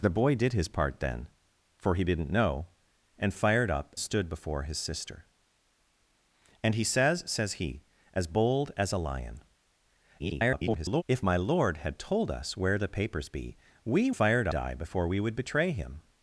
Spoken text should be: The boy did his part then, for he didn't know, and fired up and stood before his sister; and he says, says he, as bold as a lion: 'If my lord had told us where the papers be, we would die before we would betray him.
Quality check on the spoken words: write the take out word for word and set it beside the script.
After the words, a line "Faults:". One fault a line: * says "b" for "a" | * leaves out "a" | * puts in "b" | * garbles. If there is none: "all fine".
The boy did his part then, for he didn't know, and fired up stood before his sister; and he says, says he, as bold as a lion: [garbled] 'If my lord had told us where the papers be, we fired die before we would betray him.
Faults:
* leaves out "and"
* garbles
* says "fired" for "would"